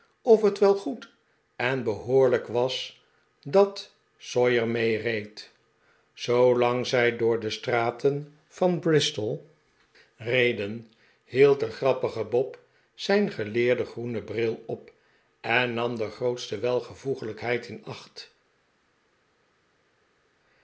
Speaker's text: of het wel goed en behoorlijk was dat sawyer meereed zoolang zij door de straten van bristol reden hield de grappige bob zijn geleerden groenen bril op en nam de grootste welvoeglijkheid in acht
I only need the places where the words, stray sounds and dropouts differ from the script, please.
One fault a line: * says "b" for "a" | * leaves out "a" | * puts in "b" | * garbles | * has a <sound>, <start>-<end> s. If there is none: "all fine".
all fine